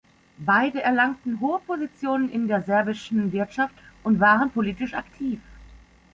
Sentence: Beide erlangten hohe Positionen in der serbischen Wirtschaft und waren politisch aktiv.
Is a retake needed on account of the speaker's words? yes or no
no